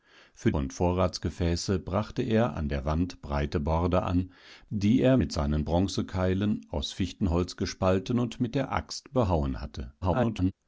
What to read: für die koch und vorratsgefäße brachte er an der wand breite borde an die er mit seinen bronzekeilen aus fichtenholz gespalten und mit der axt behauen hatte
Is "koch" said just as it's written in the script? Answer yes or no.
no